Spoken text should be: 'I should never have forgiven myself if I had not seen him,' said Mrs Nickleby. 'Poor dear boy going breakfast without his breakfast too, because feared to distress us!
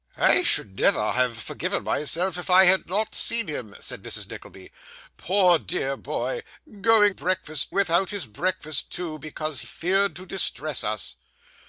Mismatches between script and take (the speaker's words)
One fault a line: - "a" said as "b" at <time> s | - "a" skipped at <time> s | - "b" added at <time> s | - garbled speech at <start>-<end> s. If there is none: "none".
none